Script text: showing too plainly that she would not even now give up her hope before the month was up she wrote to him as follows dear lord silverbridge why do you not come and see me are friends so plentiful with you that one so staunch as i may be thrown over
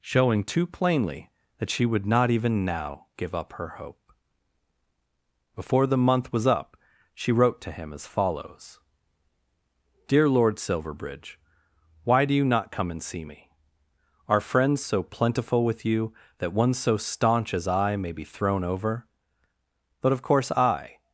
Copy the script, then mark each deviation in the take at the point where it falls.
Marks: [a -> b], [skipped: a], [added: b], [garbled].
showing too plainly that she would not even now give up her hope before the month was up she wrote to him as follows dear lord silverbridge why do you not come and see me are friends so plentiful with you that one so staunch as i may be thrown over [added: but of course i]